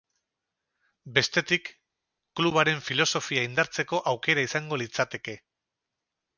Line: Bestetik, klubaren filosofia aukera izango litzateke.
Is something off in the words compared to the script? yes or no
yes